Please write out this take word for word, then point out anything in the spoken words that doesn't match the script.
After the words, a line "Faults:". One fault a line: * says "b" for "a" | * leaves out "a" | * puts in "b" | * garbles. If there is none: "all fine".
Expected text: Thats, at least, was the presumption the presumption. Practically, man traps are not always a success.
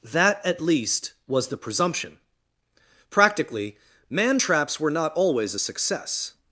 That, at least, was the presumption. Practically, man traps were not always a success.
Faults:
* says "That" for "Thats"
* leaves out "the presumption"
* says "were" for "are"